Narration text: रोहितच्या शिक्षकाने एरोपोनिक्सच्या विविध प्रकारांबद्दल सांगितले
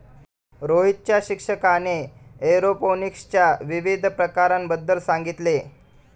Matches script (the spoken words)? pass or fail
pass